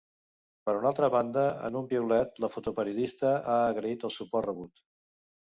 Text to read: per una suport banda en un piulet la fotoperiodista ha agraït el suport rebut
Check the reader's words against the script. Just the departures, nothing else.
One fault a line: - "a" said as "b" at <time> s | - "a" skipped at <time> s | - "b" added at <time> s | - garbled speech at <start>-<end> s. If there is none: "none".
- "suport" said as "altra" at 0.9 s